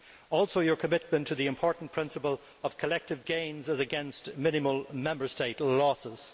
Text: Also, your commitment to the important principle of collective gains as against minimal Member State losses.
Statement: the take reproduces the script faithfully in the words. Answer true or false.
true